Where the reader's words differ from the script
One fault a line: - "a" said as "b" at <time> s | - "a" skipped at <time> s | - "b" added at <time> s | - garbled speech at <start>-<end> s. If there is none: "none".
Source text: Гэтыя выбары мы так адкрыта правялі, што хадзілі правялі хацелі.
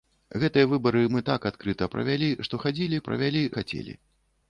none